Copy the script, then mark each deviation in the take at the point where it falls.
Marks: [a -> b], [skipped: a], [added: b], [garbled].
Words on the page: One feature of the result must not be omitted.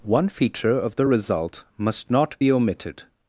One feature of the result must not be omitted.